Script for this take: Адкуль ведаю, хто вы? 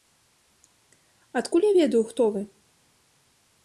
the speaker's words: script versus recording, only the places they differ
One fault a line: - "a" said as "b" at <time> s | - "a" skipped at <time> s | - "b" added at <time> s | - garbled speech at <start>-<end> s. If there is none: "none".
- "я" added at 1.6 s